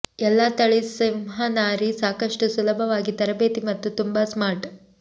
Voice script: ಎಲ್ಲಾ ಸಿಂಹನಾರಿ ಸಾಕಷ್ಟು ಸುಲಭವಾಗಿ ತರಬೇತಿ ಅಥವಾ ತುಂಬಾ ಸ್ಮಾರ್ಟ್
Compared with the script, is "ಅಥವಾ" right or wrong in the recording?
wrong